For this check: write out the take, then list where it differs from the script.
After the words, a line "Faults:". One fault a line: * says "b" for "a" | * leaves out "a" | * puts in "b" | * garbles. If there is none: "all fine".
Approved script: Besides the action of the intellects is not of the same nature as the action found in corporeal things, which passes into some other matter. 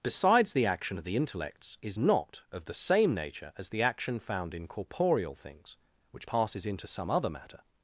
Besides the action of the intellects is not of the same nature as the action found in corporeal things, which passes into some other matter.
Faults:
all fine